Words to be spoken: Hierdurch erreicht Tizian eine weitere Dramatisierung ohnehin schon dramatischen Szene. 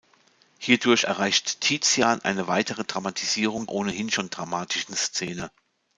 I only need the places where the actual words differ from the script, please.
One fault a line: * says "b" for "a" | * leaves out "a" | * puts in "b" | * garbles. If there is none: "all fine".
all fine